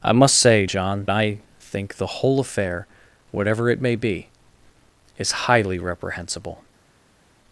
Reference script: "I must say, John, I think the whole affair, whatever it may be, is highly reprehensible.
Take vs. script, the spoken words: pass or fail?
pass